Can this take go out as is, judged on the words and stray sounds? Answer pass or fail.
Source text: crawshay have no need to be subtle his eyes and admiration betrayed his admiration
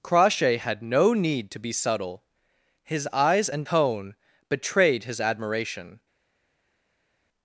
fail